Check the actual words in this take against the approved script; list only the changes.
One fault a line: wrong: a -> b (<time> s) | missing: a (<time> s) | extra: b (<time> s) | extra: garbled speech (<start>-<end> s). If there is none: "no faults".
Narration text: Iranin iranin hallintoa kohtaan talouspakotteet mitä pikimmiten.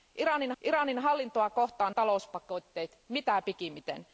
no faults